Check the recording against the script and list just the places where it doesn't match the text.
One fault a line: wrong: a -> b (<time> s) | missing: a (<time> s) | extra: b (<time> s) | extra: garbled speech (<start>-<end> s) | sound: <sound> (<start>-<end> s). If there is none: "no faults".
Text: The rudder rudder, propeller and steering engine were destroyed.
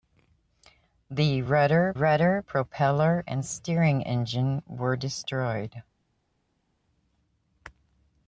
no faults